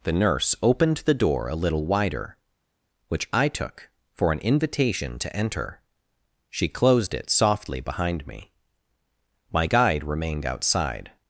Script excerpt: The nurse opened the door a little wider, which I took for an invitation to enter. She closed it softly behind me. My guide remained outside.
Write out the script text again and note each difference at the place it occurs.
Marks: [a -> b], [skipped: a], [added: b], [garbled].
The nurse opened the door a little wider, which I took for an invitation to enter. She closed it softly behind me. My guide remained outside.